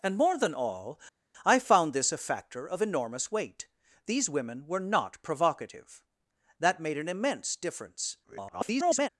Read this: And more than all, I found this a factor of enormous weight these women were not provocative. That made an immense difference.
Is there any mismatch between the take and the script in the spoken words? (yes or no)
yes